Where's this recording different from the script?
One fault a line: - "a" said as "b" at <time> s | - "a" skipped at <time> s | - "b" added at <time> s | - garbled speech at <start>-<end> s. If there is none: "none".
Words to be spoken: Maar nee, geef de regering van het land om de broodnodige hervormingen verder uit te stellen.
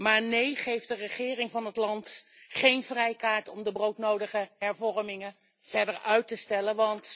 - "geen vrijkaart" added at 2.5 s